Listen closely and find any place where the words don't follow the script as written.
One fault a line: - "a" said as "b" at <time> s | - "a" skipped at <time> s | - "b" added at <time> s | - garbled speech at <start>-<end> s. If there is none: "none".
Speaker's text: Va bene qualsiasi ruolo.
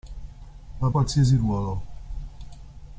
- "bene" skipped at 0.9 s